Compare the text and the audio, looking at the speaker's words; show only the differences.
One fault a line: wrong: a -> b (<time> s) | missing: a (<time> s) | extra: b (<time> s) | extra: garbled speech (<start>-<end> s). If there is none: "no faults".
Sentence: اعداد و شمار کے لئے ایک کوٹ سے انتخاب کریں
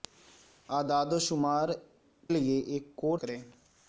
missing: کے (1.7 s)
missing: سے انتخاب (3.2 s)